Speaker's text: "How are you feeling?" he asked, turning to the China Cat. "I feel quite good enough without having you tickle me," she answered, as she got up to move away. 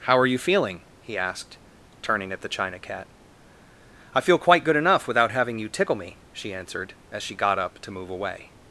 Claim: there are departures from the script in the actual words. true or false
true